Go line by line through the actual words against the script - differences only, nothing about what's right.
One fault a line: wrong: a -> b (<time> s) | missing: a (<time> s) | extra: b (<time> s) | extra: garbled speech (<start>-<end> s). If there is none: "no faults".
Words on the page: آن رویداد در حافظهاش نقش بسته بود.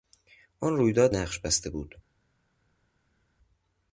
missing: در حافظهاش (1.1 s)